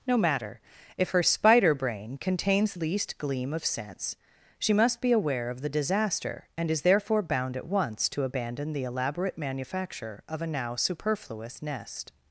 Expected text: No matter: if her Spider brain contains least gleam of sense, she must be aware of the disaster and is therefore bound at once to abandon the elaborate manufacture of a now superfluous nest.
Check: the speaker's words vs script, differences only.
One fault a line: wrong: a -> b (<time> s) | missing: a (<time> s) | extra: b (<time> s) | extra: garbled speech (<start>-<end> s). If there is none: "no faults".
no faults